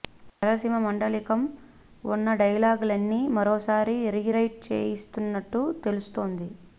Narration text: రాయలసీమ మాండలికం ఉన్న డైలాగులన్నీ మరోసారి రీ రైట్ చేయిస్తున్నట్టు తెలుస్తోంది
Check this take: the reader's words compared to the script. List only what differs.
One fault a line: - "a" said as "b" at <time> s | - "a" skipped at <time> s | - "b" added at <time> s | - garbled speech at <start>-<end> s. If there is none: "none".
none